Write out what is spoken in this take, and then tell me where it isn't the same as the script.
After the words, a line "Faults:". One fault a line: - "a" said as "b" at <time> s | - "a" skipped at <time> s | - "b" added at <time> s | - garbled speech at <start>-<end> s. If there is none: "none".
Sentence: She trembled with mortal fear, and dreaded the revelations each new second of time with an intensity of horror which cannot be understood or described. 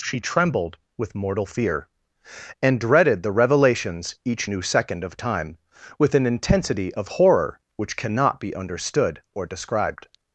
She trembled with mortal fear, and dreaded the revelations each new second of time with an intensity of horror which cannot be understood or described.
Faults:
none